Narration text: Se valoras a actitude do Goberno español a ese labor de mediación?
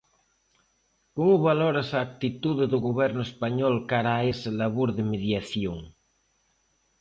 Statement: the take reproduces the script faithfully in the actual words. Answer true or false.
false